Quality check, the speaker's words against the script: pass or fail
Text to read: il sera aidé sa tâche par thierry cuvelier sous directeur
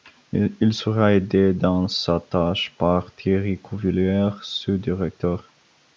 fail